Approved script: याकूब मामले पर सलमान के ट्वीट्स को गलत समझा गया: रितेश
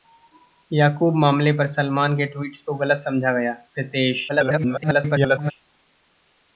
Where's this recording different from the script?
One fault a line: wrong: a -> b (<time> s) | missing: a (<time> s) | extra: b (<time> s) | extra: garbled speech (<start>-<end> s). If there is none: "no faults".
extra: garbled speech (4.3-5.5 s)